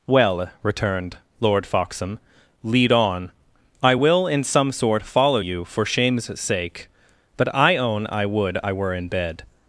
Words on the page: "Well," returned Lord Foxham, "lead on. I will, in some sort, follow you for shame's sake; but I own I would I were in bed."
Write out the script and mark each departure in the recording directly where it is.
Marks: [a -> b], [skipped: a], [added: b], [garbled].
"Well," returned Lord Foxham, "lead on. I will, in some sort, follow you for shame's sake; but I own I would I were in bed."